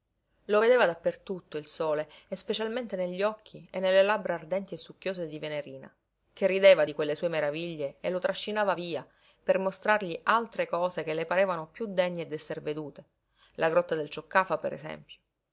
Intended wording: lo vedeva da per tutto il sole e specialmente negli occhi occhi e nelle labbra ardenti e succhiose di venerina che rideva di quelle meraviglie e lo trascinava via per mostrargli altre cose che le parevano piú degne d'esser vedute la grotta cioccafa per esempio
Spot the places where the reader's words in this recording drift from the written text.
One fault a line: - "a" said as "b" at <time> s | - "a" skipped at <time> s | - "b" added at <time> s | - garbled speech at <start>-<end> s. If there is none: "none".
- "occhi" skipped at 3.7 s
- "sue" added at 7.2 s
- "del" added at 14.0 s